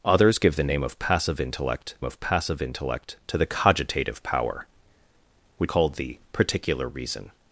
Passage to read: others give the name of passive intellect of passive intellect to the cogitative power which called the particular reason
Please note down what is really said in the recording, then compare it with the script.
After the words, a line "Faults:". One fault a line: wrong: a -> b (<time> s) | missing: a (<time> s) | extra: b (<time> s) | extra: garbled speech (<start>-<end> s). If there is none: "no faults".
others give the name of passive intellect of passive intellect to the cogitative power which called the particular reason
Faults:
no faults